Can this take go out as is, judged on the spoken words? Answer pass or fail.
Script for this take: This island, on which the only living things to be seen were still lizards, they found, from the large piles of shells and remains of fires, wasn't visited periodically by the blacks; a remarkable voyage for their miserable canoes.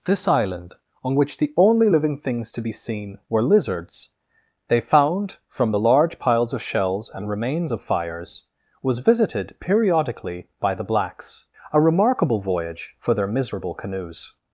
fail